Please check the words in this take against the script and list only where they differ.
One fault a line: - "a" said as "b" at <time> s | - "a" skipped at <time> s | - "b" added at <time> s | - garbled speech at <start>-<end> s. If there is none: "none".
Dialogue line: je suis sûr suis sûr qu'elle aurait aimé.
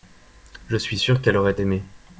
- "suis sûr" skipped at 1.2 s